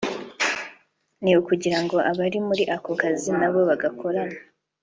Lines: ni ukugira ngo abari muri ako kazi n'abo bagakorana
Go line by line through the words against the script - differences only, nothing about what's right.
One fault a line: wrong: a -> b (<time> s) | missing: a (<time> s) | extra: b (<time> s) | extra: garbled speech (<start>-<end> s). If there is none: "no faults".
no faults